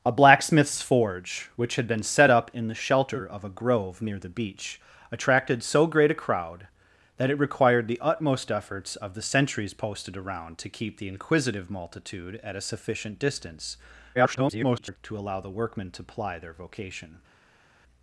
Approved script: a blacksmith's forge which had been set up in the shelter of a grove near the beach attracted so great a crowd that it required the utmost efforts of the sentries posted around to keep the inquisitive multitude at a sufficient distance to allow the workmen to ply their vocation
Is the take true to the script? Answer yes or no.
no